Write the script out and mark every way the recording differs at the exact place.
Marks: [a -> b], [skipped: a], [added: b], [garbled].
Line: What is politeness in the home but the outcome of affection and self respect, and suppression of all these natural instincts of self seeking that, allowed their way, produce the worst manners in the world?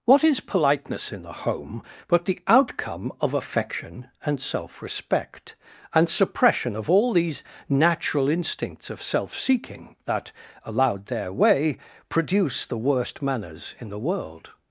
What is politeness in the home but the outcome of affection and self respect, and suppression of all these natural instincts of self seeking that, allowed their way, produce the worst manners in the world?